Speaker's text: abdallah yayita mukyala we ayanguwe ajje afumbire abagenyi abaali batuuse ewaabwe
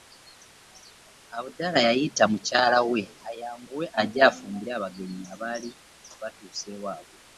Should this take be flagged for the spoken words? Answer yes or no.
no